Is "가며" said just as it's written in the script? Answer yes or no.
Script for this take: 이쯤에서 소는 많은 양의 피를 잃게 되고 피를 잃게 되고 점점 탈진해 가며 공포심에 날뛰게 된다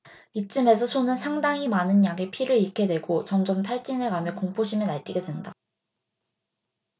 yes